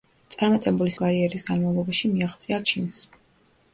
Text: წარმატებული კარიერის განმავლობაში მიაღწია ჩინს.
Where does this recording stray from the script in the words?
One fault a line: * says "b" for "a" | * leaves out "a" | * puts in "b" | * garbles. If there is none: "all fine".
all fine